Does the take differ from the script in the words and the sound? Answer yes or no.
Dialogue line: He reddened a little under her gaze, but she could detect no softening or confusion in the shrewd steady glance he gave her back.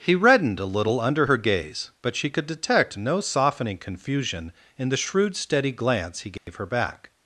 yes